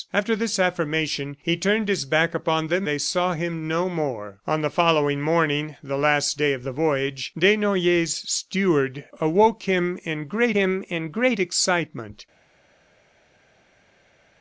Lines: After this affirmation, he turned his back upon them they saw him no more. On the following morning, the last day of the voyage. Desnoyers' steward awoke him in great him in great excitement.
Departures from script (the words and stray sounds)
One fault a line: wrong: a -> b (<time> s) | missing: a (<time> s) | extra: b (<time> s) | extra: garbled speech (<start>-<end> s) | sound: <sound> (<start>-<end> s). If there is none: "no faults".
no faults